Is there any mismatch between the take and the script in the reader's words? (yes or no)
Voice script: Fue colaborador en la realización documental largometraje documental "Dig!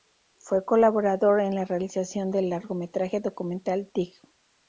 yes